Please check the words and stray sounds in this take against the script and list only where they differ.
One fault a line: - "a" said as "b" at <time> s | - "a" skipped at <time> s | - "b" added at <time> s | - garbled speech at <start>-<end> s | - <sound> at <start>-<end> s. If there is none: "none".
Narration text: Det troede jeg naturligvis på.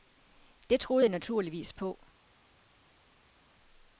none